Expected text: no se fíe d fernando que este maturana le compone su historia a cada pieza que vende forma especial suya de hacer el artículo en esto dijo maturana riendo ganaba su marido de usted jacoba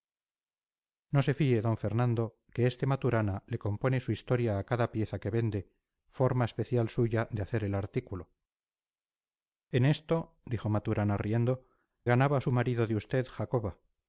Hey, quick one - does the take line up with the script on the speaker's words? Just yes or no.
yes